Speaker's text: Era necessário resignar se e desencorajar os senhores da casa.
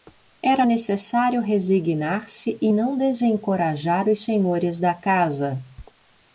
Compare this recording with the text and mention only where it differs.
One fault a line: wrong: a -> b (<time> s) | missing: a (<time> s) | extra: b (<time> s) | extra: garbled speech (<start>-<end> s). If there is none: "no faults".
extra: não (2.7 s)